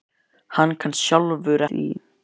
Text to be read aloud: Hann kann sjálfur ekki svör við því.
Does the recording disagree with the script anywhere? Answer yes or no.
yes